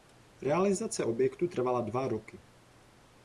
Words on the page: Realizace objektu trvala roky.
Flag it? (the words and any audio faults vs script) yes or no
yes